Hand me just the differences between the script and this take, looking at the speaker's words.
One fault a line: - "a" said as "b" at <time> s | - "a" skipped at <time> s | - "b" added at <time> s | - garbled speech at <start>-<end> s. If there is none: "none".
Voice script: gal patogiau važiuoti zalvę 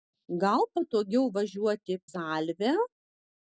none